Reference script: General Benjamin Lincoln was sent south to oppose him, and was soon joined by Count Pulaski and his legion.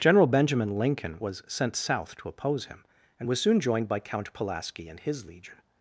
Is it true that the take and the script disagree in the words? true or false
false